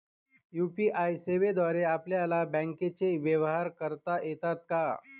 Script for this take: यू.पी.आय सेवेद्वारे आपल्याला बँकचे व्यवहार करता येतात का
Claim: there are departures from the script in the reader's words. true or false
false